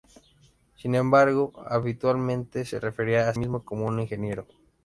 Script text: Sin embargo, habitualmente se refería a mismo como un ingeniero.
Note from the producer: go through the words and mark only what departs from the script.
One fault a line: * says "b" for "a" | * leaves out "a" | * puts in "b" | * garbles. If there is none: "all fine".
all fine